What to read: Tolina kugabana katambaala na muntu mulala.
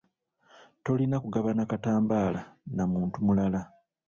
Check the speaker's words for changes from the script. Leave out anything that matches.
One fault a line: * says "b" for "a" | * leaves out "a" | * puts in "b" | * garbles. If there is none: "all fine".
all fine